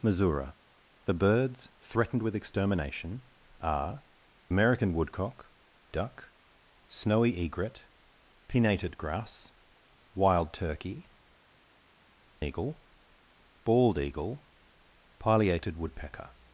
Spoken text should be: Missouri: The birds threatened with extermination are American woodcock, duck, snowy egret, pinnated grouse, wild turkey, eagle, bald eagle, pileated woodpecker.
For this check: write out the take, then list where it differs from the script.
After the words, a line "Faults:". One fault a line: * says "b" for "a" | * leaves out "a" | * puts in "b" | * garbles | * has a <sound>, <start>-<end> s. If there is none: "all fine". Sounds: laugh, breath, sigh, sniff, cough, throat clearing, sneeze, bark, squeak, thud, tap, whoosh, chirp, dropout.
Missouri: The birds threatened with extermination are American woodcock, duck, snowy egret, pinnated grouse, wild turkey, eagle, bald eagle, pileated woodpecker.
Faults:
all fine